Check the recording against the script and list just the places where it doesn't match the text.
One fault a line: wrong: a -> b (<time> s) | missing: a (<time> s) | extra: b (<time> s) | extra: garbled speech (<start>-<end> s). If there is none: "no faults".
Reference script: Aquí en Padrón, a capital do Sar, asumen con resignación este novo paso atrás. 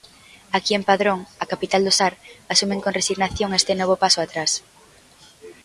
no faults